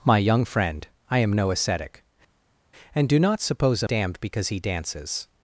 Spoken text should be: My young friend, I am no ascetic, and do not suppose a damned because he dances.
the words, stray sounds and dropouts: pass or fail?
pass